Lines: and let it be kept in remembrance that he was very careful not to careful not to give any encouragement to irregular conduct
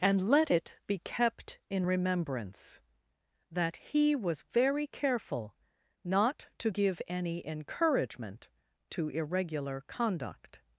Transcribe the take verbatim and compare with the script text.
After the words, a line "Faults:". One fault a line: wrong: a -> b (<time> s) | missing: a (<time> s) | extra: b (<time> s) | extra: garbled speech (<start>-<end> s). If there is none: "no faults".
and let it be kept in remembrance that he was very careful not to give any encouragement to irregular conduct
Faults:
missing: careful not to (6.7 s)